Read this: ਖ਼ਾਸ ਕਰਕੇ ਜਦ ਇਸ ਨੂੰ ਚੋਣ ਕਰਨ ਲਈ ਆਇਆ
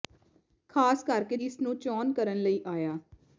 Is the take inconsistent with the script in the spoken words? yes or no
yes